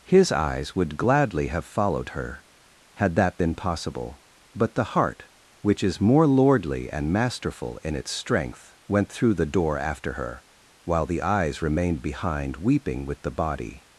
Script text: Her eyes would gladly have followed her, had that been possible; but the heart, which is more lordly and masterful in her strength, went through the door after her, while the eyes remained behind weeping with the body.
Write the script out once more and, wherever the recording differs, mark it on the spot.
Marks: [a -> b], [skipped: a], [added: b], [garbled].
[Her -> His] eyes would gladly have followed her, had that been possible; but the heart, which is more lordly and masterful in [her -> its] strength, went through the door after her, while the eyes remained behind weeping with the body.